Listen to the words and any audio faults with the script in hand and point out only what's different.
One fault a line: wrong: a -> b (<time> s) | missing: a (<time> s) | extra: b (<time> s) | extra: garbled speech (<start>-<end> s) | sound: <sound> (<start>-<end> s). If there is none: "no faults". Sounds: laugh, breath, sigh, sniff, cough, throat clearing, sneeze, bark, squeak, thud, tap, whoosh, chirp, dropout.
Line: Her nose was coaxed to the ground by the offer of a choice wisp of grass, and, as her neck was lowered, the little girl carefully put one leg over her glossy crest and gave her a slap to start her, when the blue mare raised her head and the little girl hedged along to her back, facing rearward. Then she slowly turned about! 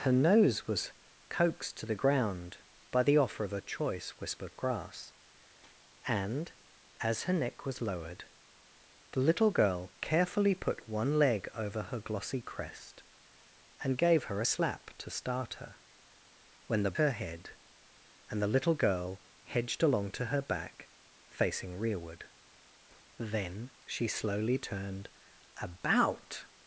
missing: blue mare raised (16.9 s)